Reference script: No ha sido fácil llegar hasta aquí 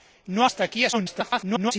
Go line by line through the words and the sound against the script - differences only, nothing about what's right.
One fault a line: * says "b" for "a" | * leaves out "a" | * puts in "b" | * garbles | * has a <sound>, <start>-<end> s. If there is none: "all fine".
* leaves out "sido fácil llegar"
* garbles